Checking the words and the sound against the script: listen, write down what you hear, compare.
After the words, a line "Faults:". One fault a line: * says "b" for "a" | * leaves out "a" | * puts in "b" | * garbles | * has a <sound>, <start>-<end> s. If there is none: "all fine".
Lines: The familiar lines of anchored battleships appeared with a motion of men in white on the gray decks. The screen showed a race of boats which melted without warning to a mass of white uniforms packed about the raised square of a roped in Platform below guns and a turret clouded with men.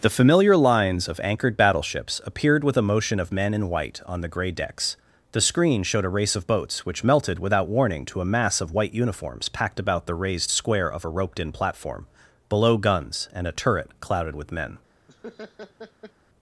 The familiar lines of anchored battleships appeared with a motion of men in white on the gray decks. The screen showed a race of boats which melted without warning to a mass of white uniforms packed about the raised square of a roped in Platform below guns and a turret clouded with men.
Faults:
* has a laugh, 15.1-16.1 s